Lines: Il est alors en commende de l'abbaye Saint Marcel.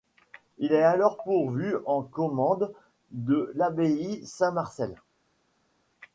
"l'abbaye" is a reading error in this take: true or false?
false